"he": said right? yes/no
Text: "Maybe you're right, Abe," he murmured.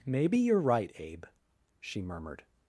no